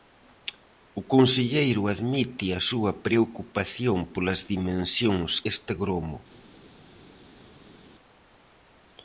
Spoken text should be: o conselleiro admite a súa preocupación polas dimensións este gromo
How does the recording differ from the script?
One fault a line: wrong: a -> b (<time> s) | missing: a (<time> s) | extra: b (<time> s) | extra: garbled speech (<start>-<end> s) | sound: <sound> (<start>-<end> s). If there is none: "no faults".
no faults